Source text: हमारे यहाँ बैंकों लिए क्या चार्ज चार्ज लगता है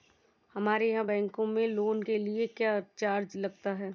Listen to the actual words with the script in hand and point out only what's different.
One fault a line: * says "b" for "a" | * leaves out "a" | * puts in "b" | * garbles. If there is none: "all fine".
* puts in "में लोन के"
* leaves out "चार्ज"